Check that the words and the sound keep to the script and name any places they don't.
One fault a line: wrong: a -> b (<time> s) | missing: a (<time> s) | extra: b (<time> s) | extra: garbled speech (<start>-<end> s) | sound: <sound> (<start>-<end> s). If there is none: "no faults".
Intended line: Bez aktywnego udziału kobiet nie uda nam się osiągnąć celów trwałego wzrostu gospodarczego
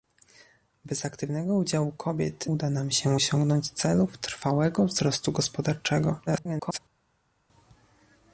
missing: nie (2.5 s)
extra: garbled speech (6.3-6.8 s)